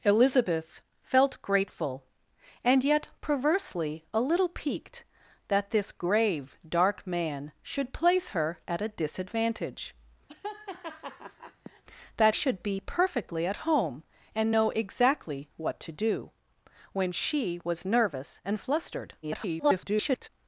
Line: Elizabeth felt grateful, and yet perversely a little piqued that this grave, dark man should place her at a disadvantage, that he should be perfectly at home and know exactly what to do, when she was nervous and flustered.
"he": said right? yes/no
no